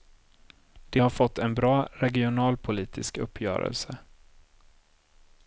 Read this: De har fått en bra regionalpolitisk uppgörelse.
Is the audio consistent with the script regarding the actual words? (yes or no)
yes